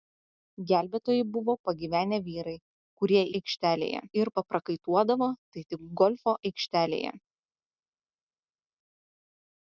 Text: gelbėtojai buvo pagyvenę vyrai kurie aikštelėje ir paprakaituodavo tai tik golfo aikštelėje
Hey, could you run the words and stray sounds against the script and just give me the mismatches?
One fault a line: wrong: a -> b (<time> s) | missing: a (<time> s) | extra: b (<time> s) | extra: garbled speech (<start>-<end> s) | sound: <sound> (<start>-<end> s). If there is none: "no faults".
no faults